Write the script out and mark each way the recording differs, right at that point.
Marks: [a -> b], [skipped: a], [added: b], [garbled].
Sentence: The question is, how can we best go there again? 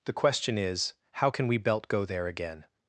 The question is, how can we [best -> belt] go there again?